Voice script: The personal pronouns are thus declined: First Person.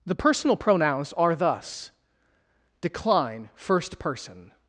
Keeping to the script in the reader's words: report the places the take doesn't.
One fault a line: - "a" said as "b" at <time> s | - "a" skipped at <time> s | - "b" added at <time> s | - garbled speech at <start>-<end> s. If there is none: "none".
- "declined" said as "decline" at 2.8 s